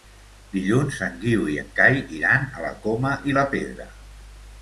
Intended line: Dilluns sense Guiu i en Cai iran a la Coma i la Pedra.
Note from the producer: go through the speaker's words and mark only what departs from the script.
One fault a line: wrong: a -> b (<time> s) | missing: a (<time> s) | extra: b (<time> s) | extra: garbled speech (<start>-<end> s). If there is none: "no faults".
wrong: sense -> en (1.1 s)